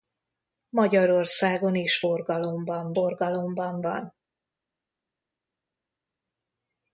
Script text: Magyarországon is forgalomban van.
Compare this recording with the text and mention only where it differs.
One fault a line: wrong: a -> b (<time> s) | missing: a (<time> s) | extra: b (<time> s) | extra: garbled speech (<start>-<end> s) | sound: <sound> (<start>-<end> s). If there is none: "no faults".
extra: forgalomban (2.9 s)